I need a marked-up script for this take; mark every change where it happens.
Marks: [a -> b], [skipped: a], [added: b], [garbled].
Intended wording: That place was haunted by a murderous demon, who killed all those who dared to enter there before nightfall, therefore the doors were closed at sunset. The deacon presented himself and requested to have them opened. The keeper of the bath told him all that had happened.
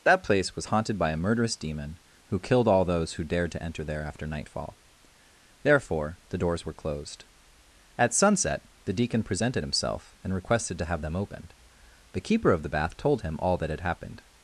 That place was haunted by a murderous demon, who killed all those who dared to enter there [before -> after] nightfall, therefore the doors were closed at sunset. The deacon presented himself and requested to have them opened. The keeper of the bath told him all that had happened.